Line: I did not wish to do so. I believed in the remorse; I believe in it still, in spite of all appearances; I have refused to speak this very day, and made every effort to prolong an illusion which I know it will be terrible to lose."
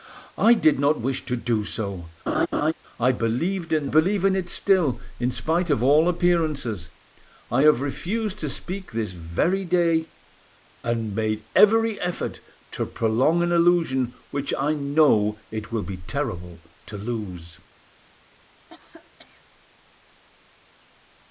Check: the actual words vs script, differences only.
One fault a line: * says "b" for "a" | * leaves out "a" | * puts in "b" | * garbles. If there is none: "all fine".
* leaves out "the remorse I"